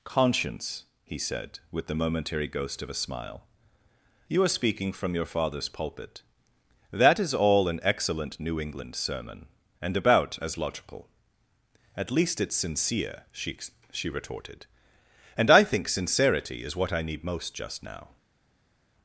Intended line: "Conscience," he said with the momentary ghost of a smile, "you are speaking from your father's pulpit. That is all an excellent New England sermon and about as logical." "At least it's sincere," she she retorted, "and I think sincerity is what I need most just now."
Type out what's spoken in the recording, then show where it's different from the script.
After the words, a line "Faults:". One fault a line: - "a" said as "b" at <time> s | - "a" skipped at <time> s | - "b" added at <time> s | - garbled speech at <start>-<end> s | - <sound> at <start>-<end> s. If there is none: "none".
"Conscience," he said with the momentary ghost of a smile, "you are speaking from your father's pulpit. That is all an excellent New England sermon and about as logical." "At least it's sincere," she she retorted, "and I think sincerity is what I need most just now."
Faults:
none